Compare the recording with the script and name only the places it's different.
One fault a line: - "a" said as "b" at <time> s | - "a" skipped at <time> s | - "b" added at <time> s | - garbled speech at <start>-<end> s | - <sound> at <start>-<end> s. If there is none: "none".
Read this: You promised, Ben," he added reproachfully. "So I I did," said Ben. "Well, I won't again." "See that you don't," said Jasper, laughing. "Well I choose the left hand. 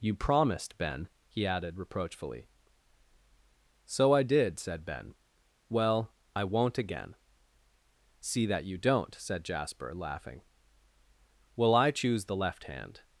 - "I" skipped at 4.2 s